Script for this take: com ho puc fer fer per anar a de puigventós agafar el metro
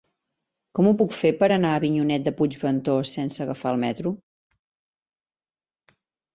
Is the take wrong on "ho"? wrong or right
right